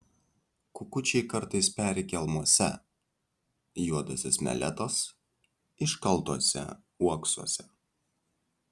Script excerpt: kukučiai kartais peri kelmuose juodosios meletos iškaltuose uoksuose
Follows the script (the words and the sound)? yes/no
yes